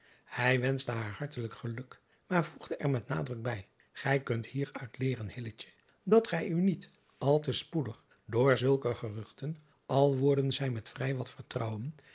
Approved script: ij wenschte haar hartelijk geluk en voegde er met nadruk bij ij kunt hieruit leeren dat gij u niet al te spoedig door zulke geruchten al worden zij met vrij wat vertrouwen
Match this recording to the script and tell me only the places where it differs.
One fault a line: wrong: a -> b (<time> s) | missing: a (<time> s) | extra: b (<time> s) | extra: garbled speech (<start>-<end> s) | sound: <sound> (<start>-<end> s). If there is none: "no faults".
wrong: en -> maar (2.3 s)